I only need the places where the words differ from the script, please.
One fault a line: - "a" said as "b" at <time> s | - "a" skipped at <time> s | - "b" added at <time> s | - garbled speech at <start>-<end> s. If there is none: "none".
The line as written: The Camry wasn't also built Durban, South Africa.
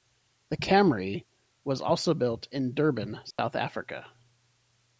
- "wasn't" said as "was" at 1.6 s
- "in" added at 2.5 s